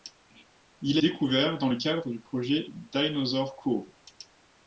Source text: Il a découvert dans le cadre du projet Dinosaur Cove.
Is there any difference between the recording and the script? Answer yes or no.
no